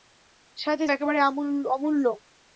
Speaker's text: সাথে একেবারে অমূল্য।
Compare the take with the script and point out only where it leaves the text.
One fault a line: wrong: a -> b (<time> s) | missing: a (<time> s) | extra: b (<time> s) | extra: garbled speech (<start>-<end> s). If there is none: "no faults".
no faults